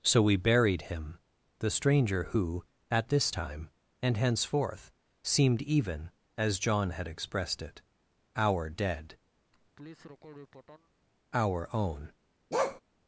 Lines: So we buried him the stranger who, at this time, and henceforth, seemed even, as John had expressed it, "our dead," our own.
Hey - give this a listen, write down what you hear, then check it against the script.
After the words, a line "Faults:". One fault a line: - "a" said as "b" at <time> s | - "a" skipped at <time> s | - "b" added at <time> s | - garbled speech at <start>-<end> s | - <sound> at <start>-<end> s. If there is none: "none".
So we buried him the stranger who, at this time, and henceforth, seemed even, as John had expressed it, "our dead," our own.
Faults:
- laugh at 9.5-10.9 s
- bark at 12.5-12.8 s